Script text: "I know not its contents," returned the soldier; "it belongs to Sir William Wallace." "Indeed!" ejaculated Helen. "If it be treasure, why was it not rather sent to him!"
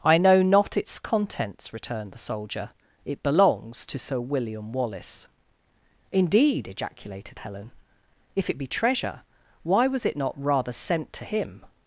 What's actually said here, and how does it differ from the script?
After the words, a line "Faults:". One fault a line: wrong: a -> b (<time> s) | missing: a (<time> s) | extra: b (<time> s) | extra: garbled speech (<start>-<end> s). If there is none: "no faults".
"I know not its contents," returned the soldier; "it belongs to Sir William Wallace." "Indeed!" ejaculated Helen. "If it be treasure, why was it not rather sent to him!"
Faults:
no faults